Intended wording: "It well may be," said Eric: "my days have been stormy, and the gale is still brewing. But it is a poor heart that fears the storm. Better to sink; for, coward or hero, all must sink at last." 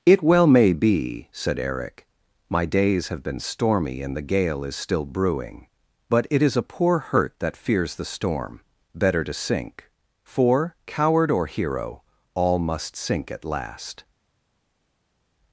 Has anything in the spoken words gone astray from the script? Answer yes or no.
yes